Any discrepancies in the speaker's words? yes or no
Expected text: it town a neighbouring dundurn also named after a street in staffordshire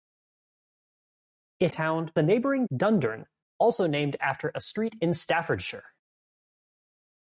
no